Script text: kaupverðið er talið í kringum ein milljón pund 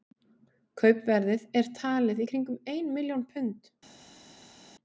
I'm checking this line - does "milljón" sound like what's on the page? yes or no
yes